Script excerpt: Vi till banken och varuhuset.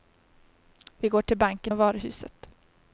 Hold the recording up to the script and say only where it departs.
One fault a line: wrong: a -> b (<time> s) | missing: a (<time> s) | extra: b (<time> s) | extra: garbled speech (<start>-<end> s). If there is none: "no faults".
extra: går (1.1 s)